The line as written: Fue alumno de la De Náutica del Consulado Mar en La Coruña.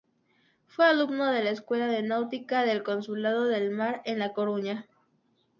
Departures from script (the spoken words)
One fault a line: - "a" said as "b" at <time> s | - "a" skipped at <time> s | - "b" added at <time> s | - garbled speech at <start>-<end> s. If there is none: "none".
- "Escuela" added at 1.5 s
- "del" added at 3.4 s